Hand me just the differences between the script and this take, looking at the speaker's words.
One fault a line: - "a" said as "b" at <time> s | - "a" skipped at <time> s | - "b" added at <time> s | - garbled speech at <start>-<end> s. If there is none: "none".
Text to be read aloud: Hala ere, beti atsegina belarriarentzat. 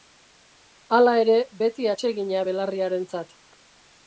none